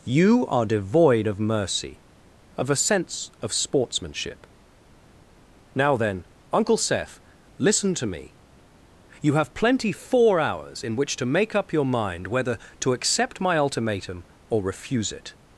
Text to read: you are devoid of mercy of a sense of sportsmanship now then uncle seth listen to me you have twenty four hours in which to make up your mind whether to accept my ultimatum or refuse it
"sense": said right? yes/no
yes